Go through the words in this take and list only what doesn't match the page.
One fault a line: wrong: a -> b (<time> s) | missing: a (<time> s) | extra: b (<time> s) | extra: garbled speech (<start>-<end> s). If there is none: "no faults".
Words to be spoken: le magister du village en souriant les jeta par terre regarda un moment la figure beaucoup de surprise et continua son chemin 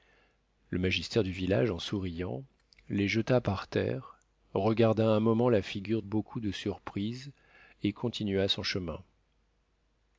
no faults